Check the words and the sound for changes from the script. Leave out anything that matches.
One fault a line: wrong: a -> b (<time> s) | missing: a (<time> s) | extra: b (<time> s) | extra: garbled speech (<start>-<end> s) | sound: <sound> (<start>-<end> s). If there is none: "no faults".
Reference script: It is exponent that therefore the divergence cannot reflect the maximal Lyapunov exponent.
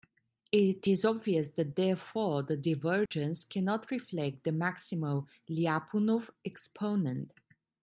wrong: exponent -> obvious (1.0 s)
sound: dropout (3.1-3.1 s)